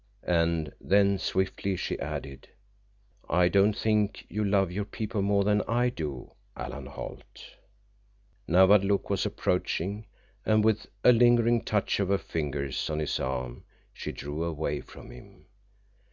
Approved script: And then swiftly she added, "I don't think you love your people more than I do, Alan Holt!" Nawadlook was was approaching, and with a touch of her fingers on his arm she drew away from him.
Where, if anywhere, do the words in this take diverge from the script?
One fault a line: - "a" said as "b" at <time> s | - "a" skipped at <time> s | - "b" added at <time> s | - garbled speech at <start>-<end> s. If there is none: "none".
- "was" skipped at 9.3 s
- "lingering" added at 11.1 s